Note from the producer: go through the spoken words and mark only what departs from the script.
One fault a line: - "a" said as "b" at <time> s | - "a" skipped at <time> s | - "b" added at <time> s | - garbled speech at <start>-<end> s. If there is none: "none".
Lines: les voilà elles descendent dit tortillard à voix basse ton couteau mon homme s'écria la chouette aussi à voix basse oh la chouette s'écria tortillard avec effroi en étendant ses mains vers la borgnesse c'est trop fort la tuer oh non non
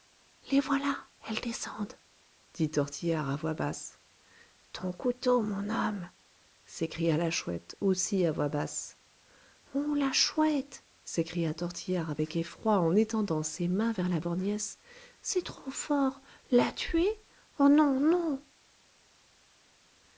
none